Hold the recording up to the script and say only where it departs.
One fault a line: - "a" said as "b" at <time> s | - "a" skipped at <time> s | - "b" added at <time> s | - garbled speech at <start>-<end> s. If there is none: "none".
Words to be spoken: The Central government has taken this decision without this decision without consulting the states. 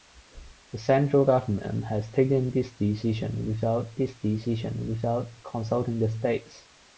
none